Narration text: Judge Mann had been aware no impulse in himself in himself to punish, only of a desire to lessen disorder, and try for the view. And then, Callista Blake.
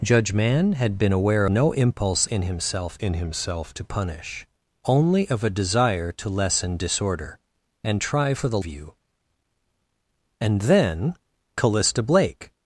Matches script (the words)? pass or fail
pass